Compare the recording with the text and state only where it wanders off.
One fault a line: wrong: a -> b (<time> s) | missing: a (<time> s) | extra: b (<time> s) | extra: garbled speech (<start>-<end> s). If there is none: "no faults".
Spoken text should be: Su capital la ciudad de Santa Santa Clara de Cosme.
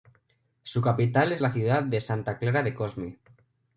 extra: es (1.3 s)
missing: Santa (2.4 s)